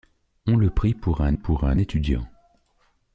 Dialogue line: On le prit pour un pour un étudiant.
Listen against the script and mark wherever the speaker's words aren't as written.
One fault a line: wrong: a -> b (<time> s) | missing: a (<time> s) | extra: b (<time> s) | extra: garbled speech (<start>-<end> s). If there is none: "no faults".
no faults